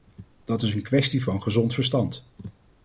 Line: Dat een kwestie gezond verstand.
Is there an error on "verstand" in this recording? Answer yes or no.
no